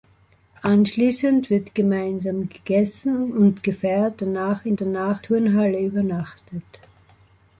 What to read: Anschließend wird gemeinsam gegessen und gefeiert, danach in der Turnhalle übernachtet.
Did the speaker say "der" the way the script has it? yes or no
no